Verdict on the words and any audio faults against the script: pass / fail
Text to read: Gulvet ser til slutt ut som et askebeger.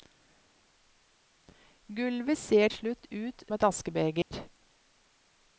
fail